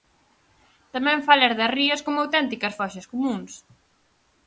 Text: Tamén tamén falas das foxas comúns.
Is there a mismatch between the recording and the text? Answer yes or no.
yes